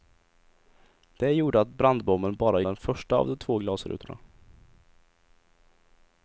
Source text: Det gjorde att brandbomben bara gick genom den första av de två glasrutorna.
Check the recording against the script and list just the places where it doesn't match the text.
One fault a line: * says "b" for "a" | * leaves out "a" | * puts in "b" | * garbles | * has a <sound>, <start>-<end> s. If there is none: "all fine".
* leaves out "gick genom"